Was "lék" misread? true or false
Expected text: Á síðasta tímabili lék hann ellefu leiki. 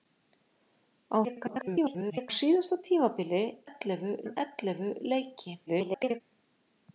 true